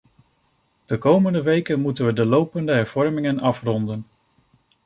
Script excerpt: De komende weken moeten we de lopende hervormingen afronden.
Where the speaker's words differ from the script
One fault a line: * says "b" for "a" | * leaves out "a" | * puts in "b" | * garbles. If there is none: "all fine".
all fine